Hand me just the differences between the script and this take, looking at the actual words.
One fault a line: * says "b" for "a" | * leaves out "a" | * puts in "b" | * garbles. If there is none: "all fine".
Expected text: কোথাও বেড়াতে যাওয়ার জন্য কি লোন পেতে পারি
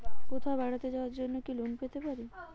all fine